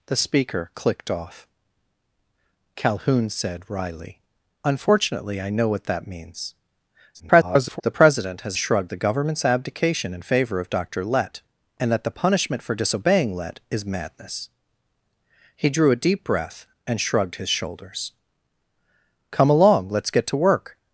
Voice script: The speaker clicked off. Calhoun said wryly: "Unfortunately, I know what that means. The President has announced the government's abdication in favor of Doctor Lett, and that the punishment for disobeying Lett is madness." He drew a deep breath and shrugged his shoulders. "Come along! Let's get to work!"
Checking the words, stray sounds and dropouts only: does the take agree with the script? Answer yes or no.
no